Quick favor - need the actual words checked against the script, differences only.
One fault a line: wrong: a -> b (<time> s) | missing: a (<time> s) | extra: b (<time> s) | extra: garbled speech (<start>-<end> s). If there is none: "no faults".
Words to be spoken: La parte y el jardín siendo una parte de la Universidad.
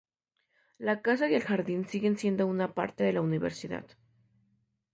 wrong: parte -> casa (1.0 s)
extra: siguen (1.9 s)